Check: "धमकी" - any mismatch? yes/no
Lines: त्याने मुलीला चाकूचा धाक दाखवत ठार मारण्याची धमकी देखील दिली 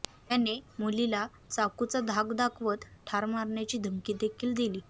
no